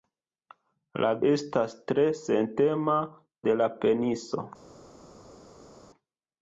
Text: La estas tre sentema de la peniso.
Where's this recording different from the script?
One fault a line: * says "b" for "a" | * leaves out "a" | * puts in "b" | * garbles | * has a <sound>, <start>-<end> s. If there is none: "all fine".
all fine